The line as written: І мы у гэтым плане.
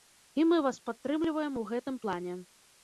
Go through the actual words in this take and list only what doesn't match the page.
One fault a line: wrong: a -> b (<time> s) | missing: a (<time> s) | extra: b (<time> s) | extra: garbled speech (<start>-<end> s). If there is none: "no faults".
extra: вас падтрымліваем (0.7 s)